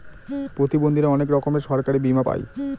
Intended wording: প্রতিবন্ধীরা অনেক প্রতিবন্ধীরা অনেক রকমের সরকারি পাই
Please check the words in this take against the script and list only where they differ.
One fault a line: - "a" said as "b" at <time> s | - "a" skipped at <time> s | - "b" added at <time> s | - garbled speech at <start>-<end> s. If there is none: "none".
- "প্রতিবন্ধীরা অনেক" skipped at 1.3 s
- "বীমা" added at 2.0 s